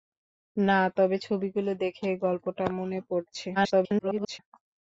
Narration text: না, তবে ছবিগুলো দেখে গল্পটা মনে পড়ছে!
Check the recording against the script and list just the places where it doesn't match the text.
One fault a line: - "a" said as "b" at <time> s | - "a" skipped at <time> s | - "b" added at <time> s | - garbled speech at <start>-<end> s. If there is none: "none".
- garbled speech at 3.6-4.4 s